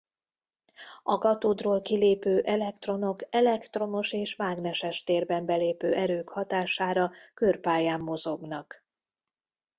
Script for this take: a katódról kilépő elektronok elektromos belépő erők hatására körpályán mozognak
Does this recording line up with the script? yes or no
no